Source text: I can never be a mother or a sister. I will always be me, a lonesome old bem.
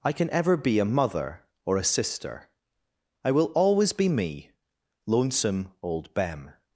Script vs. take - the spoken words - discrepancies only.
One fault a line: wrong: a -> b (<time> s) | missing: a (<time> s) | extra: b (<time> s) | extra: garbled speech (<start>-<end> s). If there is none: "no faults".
wrong: never -> ever (0.3 s)
missing: a (4.5 s)